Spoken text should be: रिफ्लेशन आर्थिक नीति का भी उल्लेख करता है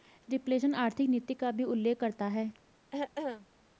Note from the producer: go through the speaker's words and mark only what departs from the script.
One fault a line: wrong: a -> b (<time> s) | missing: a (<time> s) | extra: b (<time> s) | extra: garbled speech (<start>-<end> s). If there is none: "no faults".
no faults